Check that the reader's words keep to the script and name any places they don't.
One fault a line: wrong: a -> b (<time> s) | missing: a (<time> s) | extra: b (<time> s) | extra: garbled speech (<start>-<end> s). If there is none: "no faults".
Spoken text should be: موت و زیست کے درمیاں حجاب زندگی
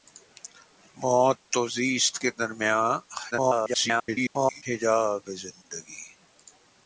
extra: garbled speech (3.3-4.6 s)